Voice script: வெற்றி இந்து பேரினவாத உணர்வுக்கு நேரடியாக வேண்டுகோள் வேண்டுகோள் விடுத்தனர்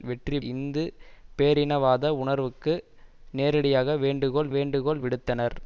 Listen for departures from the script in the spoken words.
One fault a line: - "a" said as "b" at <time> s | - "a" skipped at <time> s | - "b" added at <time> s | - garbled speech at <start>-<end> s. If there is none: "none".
none